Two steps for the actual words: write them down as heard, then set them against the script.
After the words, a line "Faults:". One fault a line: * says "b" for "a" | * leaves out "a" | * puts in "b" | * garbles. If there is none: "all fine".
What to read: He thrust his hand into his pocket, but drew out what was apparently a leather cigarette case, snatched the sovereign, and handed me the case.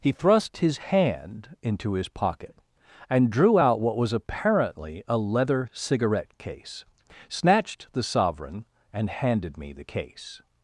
He thrust his hand into his pocket, and drew out what was apparently a leather cigarette case, snatched the sovereign, and handed me the case.
Faults:
* says "and" for "but"